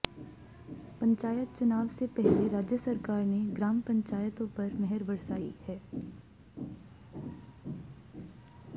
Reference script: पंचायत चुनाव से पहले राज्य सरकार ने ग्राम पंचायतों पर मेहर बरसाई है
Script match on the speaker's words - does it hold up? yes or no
yes